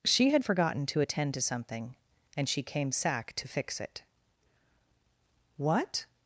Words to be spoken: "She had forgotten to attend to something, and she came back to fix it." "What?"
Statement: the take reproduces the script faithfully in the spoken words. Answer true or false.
false